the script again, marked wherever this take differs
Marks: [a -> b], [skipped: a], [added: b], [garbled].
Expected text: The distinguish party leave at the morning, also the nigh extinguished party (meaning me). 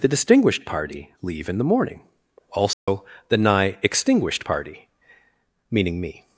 The [distinguish -> distinguished] party leave [at -> in] the morning, also the nigh extinguished party (meaning me).